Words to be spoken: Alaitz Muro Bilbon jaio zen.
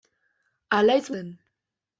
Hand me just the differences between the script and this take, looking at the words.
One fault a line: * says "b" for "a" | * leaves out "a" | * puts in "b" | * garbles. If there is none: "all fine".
* leaves out "Muro Bilbon jaio"